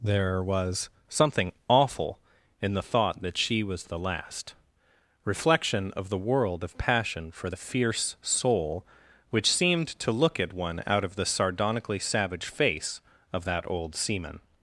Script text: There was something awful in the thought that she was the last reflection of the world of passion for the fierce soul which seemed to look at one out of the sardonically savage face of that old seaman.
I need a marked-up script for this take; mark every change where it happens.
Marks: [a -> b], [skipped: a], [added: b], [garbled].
There was something awful in the thought that she was the last reflection of the world of passion for the fierce soul which seemed to look at one out of the sardonically savage face of that old seaman.